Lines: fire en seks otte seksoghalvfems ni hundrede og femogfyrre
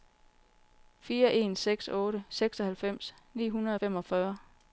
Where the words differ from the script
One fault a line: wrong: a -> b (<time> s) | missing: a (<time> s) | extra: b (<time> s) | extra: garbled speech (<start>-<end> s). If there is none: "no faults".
no faults